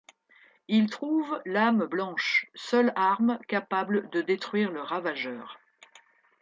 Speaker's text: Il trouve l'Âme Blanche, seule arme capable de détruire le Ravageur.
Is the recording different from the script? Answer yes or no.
no